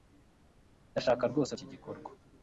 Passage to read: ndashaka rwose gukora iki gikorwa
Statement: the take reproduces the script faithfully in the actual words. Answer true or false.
false